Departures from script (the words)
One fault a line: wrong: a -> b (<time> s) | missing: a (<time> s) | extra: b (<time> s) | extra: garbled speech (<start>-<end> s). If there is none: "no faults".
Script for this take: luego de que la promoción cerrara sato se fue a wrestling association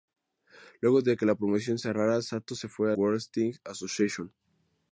no faults